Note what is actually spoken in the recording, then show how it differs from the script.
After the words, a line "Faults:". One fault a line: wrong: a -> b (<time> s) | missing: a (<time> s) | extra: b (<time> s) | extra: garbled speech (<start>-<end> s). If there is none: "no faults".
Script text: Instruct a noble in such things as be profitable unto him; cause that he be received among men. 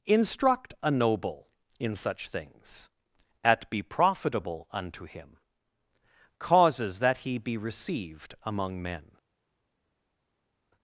Instruct a noble in such things at be profitable unto him; causes that he be received among men.
Faults:
wrong: as -> at (3.4 s)
wrong: cause -> causes (6.4 s)